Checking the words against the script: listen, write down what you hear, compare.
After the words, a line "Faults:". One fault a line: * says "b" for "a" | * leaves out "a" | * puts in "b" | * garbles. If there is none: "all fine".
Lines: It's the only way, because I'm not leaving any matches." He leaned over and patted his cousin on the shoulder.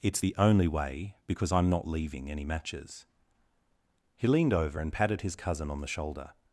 It's the only way, because I'm not leaving any matches." He leaned over and patted his cousin on the shoulder.
Faults:
all fine